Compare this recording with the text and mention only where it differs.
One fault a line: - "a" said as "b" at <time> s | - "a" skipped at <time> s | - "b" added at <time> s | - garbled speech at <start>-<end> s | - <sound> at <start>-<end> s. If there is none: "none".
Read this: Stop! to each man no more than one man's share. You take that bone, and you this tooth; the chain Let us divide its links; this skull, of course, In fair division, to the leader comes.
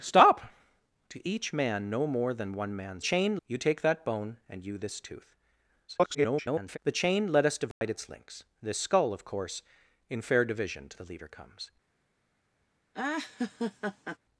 - "share" said as "chain" at 3.0 s
- garbled speech at 5.9-6.8 s
- dropout at 7.7-7.8 s
- laugh at 12.9-14.2 s